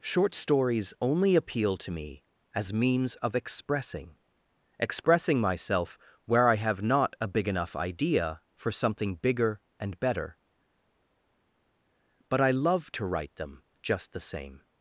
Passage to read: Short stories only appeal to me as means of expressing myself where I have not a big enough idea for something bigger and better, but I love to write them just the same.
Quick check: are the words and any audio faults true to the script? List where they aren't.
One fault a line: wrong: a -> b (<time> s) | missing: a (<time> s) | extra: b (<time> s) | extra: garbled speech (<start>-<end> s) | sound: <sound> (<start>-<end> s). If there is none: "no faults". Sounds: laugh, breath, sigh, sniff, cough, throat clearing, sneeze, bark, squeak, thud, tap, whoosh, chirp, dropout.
extra: expressing (4.8 s)